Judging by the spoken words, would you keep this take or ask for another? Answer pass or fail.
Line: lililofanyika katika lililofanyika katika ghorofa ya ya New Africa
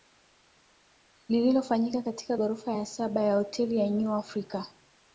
fail